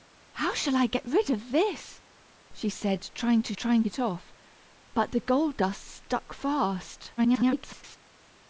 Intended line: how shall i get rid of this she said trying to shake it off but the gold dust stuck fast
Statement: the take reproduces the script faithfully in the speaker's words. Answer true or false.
false